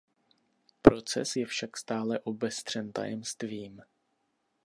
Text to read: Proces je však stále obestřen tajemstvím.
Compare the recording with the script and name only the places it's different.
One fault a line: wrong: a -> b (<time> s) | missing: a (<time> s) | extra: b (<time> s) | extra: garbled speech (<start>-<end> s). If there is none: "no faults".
no faults